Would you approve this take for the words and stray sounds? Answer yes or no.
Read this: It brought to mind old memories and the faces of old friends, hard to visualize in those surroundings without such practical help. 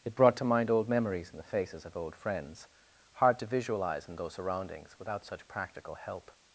yes